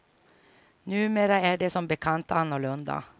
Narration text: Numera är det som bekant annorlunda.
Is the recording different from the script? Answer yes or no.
no